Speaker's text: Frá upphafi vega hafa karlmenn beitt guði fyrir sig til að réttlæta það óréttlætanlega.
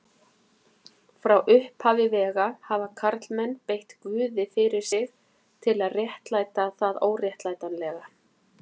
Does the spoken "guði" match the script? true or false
true